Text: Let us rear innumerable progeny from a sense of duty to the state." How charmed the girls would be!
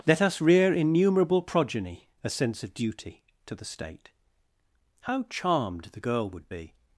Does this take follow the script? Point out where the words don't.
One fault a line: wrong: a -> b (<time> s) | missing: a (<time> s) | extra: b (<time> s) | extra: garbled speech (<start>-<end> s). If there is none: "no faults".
missing: from (2.1 s)
wrong: girls -> girl (6.0 s)